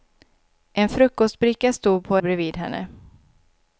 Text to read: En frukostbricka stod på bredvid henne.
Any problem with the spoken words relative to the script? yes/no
no